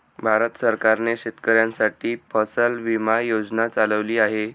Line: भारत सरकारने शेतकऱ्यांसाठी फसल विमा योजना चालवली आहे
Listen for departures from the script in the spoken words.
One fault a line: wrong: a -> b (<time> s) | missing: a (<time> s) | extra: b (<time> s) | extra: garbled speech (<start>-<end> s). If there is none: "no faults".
no faults